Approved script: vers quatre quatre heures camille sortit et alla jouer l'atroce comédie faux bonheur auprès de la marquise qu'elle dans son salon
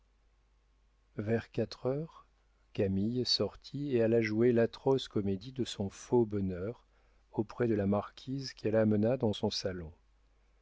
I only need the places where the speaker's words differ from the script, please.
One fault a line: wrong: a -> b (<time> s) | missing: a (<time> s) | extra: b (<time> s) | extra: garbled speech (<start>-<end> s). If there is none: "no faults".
missing: quatre (1.9 s)
extra: de son (5.5 s)
extra: amena (8.8 s)